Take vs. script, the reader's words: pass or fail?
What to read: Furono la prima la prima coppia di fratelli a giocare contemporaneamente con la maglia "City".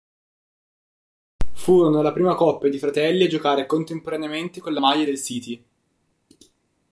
fail